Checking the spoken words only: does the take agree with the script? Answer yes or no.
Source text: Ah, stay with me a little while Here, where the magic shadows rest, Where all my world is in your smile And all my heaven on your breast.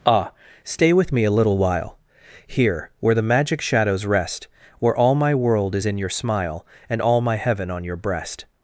yes